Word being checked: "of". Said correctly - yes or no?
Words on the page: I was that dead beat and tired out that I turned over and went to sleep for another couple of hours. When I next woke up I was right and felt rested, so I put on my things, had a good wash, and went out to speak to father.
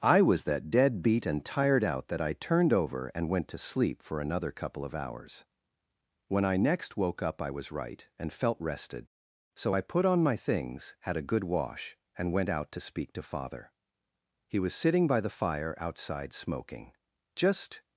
yes